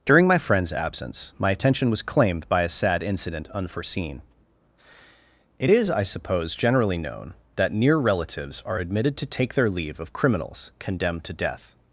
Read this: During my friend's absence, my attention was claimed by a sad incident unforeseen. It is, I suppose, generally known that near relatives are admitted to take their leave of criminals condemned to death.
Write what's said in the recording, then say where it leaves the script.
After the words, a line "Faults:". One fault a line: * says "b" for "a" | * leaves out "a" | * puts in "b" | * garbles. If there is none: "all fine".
During my friend's absence, my attention was claimed by a sad incident unforeseen. It is, I suppose, generally known that near relatives are admitted to take their leave of criminals condemned to death.
Faults:
all fine